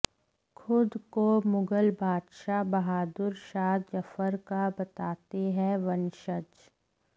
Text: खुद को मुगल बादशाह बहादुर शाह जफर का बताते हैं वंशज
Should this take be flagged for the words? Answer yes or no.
no